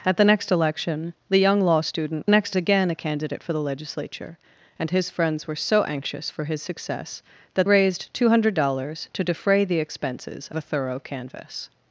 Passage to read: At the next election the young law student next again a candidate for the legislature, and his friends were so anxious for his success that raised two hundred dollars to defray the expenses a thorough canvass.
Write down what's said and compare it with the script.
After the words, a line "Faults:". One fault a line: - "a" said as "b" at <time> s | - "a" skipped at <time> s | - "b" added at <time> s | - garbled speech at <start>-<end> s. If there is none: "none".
At the next election the young law student next again a candidate for the legislature, and his friends were so anxious for his success that raised two hundred dollars to defray the expenses a thorough canvass.
Faults:
none